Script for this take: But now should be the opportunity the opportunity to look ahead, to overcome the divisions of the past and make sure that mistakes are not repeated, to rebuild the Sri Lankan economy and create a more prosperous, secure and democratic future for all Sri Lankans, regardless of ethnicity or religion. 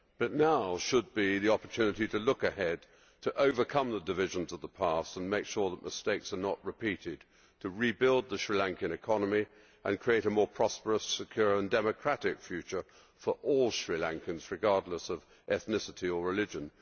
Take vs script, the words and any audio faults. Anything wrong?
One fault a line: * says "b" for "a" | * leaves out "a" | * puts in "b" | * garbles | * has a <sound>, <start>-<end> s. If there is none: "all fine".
* leaves out "the opportunity"